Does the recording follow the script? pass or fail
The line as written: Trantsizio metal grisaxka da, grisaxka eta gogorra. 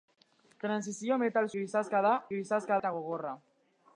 pass